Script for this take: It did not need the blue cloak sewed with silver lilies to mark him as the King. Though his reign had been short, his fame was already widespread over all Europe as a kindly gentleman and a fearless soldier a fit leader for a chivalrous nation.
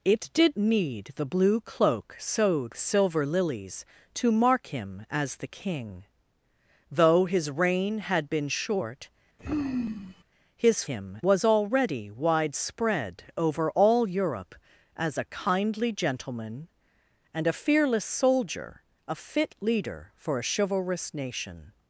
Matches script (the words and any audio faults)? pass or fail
fail